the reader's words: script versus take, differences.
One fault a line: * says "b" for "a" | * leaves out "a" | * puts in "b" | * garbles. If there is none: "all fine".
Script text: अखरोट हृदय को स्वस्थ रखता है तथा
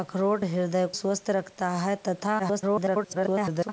* leaves out "को"
* garbles